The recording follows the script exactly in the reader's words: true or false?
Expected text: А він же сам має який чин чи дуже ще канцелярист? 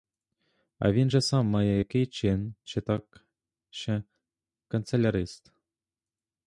false